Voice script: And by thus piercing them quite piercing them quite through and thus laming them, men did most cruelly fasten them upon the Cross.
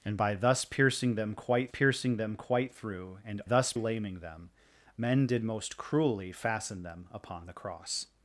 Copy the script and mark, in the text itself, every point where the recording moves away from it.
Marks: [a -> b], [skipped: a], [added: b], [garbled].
And by thus piercing them quite piercing them quite through and thus laming them, men did most cruelly fasten them upon the Cross.